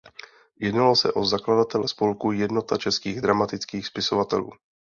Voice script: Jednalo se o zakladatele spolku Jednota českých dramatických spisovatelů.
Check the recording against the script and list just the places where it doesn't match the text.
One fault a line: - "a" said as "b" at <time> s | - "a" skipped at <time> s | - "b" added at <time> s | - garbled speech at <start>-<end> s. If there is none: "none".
none